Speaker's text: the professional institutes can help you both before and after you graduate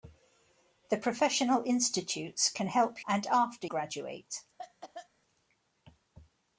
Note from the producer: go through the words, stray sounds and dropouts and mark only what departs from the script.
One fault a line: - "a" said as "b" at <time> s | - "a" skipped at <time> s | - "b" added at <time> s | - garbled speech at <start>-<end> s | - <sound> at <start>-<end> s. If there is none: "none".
- "you both before" skipped at 3.0 s
- "you" skipped at 3.7 s
- cough at 4.6-5.1 s